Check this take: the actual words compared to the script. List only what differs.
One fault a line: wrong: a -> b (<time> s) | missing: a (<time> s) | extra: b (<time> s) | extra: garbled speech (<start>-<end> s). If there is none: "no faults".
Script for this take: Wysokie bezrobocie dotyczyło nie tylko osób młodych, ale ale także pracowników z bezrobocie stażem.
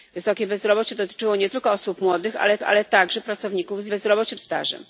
no faults